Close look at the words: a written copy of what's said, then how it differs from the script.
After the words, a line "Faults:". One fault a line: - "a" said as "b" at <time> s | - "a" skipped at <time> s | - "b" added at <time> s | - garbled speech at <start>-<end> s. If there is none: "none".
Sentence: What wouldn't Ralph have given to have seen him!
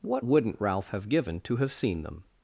What wouldn't Ralph have given to have seen them!
Faults:
- "him" said as "them" at 2.0 s